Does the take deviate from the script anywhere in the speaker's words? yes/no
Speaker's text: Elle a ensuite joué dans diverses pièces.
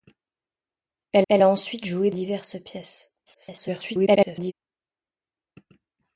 yes